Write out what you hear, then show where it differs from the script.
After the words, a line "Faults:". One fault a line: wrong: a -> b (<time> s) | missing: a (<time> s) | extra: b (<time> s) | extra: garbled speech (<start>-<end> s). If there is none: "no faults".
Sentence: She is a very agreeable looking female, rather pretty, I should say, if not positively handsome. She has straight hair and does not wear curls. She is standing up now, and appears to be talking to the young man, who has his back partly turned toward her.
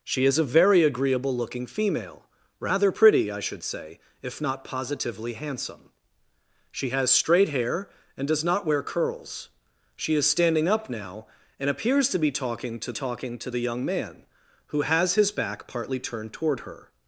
She is a very agreeable looking female, rather pretty, I should say, if not positively handsome. She has straight hair and does not wear curls. She is standing up now, and appears to be talking to talking to the young man, who has his back partly turned toward her.
Faults:
extra: talking to (12.9 s)